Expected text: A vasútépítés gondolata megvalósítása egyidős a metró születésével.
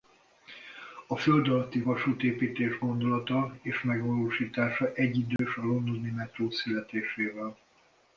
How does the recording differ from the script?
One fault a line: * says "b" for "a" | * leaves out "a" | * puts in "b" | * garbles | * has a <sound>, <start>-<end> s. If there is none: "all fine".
* puts in "földalatti"
* puts in "és"
* has a dropout, 5.4-5.4 s
* puts in "londoni"